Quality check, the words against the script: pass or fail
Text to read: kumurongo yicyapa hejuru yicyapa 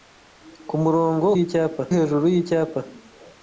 pass